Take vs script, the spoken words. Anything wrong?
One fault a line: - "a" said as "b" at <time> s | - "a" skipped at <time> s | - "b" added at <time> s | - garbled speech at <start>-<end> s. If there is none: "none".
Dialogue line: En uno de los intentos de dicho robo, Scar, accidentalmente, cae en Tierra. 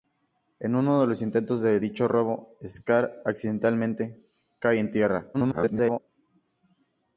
- garbled speech at 5.3-6.0 s